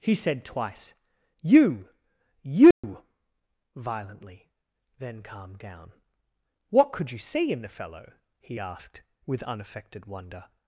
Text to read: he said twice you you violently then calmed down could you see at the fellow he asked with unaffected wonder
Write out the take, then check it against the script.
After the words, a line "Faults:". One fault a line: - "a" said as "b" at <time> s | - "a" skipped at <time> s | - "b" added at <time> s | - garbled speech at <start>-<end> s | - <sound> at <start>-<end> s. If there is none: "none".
he said twice you you violently then calmed down what could you see in the fellow he asked with unaffected wonder
Faults:
- dropout at 2.7-2.8 s
- "what" added at 6.7 s
- "at" said as "in" at 7.5 s